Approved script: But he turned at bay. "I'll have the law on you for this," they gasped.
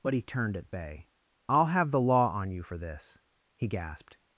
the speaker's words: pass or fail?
fail